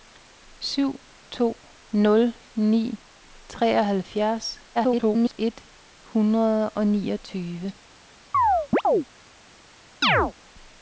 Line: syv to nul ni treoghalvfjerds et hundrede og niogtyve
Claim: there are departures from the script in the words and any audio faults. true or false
true